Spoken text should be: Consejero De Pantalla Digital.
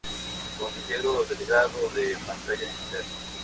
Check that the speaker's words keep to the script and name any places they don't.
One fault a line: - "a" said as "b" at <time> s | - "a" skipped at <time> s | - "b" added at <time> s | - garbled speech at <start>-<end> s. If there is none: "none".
- "Delegado" added at 1.2 s